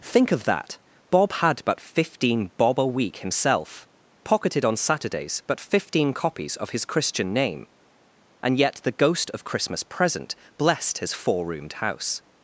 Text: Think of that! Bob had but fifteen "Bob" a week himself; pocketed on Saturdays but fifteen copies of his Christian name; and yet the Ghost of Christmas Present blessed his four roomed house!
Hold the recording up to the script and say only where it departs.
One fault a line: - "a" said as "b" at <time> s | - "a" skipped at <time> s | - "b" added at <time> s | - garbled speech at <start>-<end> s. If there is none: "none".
none